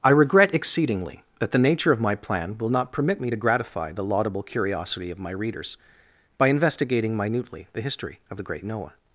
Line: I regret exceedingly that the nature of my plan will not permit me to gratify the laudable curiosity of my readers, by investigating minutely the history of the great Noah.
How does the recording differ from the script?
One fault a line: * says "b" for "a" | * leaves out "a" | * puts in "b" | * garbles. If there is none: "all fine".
all fine